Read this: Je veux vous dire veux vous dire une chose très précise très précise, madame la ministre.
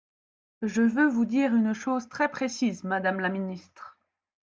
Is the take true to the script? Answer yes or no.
no